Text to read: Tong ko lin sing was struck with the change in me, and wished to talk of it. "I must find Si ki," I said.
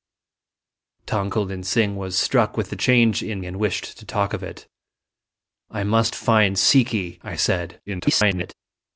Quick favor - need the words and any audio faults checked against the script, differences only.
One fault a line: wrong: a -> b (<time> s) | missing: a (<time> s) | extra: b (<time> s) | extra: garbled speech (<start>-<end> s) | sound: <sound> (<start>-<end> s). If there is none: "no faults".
missing: me (3.4 s)
extra: garbled speech (7.9-8.5 s)